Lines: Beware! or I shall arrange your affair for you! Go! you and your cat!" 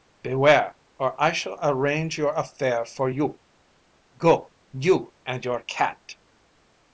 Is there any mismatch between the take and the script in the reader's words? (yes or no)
no